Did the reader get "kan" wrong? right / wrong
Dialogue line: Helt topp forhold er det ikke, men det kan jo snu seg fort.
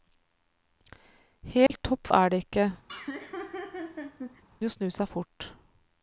wrong